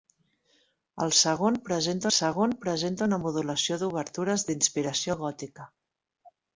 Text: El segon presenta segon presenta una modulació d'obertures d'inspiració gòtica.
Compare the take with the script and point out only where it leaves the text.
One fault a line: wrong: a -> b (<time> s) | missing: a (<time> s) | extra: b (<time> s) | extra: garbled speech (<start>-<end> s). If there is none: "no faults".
no faults